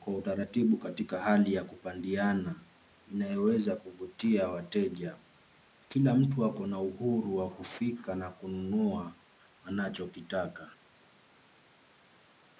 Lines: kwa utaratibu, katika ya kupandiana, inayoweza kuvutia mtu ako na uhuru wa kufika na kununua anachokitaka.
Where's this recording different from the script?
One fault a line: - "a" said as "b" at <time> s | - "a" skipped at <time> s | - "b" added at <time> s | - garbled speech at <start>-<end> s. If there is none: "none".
- "hali" added at 1.2 s
- "wateja Kila" added at 4.5 s